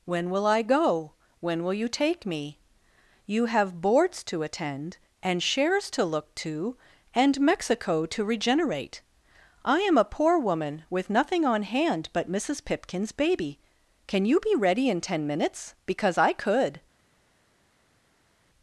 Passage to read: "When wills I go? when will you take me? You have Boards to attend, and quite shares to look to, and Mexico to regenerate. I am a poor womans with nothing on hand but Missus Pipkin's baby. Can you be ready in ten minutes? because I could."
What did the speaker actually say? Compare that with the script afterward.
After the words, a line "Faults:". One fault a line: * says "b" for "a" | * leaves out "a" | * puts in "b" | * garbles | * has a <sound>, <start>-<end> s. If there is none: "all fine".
"When will I go? when will you take me? You have Boards to attend, and shares to look to, and Mexico to regenerate. I am a poor woman with nothing on hand but Missus Pipkin's baby. Can you be ready in ten minutes? because I could."
Faults:
* says "will" for "wills"
* leaves out "quite"
* says "woman" for "womans"